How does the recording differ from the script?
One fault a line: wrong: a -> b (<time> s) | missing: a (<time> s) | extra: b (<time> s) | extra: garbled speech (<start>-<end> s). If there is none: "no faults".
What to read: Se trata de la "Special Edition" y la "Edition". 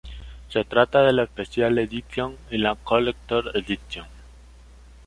extra: Collector's (2.7 s)